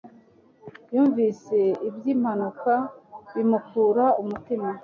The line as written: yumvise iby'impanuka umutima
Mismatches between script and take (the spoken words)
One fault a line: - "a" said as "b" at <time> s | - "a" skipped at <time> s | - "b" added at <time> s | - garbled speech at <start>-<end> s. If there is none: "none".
- "bimukura" added at 3.3 s